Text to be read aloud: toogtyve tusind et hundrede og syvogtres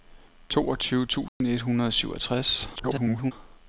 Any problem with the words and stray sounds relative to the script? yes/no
yes